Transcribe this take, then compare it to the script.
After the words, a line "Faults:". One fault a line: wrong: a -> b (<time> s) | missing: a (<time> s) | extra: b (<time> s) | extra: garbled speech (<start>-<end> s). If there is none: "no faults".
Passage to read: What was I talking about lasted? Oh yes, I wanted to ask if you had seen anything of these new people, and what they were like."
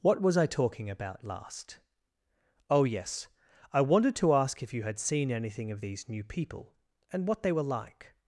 What was I talking about last? Oh yes, I wanted to ask if you had seen anything of these new people, and what they were like."
Faults:
wrong: lasted -> last (1.3 s)